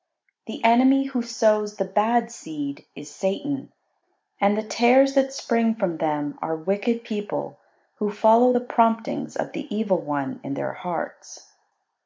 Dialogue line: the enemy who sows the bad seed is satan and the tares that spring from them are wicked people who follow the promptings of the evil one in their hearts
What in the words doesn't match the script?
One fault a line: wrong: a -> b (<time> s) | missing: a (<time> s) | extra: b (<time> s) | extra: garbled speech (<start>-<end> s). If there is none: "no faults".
no faults